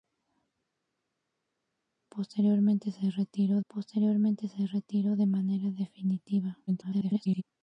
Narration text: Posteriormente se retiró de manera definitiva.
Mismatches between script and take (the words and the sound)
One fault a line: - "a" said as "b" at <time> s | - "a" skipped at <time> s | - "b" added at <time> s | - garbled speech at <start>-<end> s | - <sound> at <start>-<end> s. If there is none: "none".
- "posteriormente se retiró" added at 3.7 s
- garbled speech at 6.7-7.4 s